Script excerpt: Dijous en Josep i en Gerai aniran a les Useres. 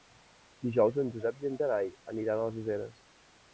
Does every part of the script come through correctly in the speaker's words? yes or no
yes